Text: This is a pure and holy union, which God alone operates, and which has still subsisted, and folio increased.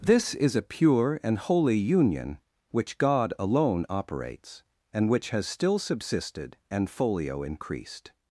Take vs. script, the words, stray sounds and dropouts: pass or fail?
pass